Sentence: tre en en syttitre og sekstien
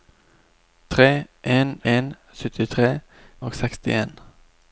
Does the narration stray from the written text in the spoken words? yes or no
no